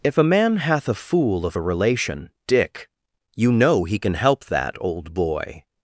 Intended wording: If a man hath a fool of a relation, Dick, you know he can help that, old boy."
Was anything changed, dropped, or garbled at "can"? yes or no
no